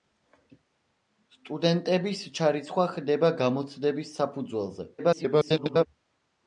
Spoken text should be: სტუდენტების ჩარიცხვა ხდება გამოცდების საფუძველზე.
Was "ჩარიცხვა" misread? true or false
false